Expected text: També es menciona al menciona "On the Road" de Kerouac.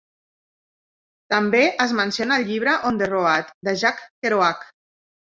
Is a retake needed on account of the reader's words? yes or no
yes